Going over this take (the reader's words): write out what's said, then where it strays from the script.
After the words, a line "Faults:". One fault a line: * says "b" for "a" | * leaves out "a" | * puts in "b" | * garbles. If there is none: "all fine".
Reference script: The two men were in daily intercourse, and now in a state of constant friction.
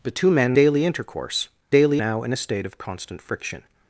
The two men daily intercourse, daily now in a state of constant friction.
Faults:
* leaves out "were in"
* says "daily" for "and"